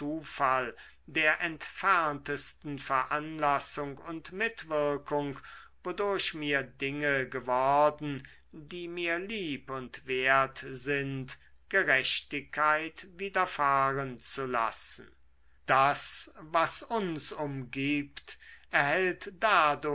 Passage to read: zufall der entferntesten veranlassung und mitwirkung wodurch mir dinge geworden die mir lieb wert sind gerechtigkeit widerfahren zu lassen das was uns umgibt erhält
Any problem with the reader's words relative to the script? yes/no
yes